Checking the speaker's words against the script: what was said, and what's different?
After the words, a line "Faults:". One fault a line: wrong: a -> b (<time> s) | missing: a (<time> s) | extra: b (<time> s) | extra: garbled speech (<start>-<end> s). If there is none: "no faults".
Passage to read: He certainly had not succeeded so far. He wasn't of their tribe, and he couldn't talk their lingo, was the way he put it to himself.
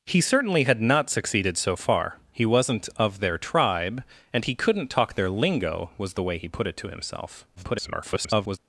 He certainly had not succeeded so far. He wasn't of their tribe, and he couldn't talk their lingo, was the way he put it to himself. [garbled]
Faults:
extra: garbled speech (7.6-8.6 s)